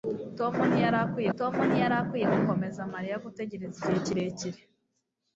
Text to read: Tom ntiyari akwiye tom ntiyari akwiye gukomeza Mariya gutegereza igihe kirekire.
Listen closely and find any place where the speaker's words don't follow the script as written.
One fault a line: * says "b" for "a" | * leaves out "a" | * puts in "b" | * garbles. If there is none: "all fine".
all fine